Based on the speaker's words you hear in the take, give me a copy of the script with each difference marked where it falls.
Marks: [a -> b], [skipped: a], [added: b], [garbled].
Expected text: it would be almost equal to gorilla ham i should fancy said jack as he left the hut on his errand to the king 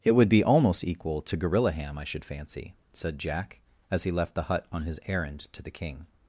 it would be almost equal to gorilla ham i should fancy said jack as he left the hut on his errand to the king